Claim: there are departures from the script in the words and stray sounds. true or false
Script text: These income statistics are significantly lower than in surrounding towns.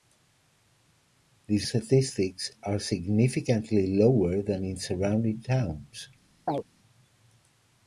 true